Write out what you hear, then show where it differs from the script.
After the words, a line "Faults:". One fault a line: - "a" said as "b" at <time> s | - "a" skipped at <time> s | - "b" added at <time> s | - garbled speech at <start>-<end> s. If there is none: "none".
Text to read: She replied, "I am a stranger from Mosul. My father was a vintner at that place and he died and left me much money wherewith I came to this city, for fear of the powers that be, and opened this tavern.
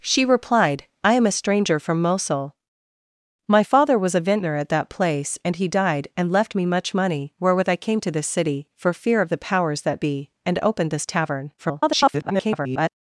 She replied, "I am a stranger from Mosul. My father was a vintner at that place and he died and left me much money wherewith I came to this city, for fear of the powers that be, and opened this tavern. [garbled]
Faults:
- garbled speech at 11.6-12.9 s